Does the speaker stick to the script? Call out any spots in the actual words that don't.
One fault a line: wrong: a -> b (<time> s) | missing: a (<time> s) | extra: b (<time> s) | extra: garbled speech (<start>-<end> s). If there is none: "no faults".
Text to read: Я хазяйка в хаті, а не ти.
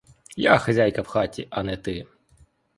no faults